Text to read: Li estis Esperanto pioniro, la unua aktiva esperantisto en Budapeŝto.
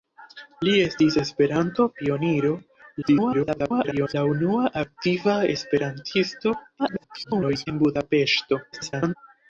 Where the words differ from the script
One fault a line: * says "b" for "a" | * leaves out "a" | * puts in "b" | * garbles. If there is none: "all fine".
* garbles
* garbles
* garbles